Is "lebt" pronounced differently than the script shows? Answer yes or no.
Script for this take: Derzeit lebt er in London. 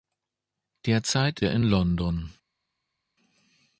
yes